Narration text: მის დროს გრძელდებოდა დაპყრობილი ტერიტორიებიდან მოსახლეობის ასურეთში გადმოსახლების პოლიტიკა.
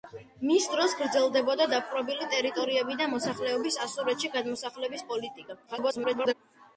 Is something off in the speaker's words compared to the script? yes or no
yes